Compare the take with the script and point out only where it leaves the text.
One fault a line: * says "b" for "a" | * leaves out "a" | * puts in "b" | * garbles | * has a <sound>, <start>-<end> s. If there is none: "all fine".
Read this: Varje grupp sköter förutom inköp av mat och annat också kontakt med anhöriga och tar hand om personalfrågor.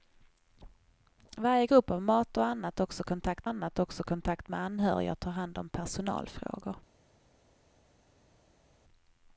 * says "av mat och annat också kontakt" for "sköter förutom inköp av mat och"